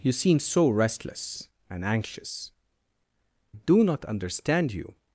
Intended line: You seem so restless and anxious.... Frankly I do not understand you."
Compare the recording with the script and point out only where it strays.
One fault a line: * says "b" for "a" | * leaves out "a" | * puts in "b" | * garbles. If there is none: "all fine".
* leaves out "Frankly I"